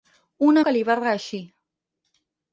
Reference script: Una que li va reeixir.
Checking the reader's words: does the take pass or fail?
pass